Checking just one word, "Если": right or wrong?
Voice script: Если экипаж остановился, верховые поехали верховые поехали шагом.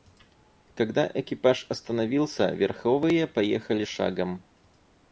wrong